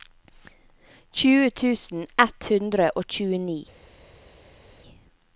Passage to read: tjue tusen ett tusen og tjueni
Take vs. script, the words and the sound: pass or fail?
fail